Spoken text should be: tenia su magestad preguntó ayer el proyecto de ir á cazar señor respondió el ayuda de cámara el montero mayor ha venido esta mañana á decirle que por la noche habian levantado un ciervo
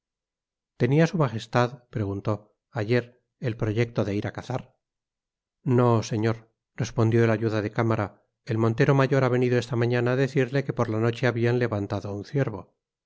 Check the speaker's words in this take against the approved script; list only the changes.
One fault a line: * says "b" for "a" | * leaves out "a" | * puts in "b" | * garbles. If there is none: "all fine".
* puts in "no"